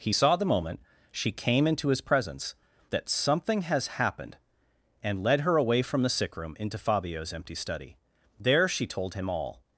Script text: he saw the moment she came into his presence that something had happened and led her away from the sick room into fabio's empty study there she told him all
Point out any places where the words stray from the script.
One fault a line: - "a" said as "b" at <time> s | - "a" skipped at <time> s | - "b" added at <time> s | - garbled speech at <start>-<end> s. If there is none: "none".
- "had" said as "has" at 3.6 s